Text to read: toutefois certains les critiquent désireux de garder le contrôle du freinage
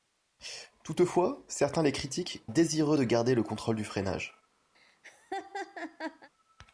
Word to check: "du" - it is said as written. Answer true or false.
true